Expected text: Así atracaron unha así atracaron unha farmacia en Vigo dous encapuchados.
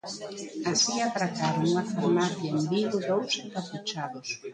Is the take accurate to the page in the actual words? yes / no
no